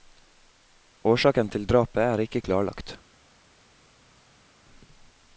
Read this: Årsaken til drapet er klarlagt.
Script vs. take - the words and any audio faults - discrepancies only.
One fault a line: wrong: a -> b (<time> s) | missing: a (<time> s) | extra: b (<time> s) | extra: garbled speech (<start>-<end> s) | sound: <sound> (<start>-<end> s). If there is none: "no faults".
extra: ikke (2.3 s)